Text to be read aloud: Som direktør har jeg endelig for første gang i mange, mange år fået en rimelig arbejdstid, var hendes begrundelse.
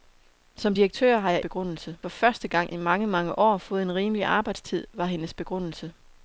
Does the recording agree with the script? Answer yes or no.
no